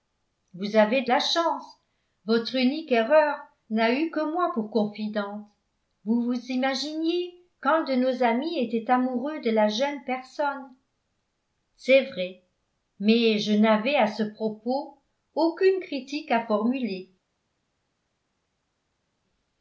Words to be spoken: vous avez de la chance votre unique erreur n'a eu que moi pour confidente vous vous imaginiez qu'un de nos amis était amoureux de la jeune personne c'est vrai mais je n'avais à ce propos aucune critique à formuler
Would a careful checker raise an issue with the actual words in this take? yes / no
no